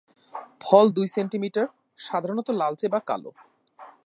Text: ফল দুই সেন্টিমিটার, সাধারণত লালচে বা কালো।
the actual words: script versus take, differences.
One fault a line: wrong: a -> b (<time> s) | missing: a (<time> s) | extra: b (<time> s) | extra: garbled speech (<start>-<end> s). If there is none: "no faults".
no faults